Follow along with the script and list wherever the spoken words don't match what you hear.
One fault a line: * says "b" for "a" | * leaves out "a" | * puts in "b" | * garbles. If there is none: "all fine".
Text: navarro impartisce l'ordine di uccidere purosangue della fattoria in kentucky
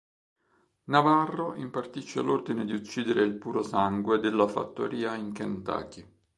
* puts in "il"